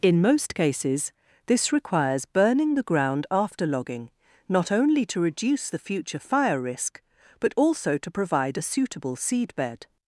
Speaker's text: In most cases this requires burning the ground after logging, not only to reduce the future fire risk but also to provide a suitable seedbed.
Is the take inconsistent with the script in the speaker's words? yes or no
no